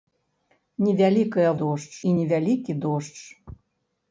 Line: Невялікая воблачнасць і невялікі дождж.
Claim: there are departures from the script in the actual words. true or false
true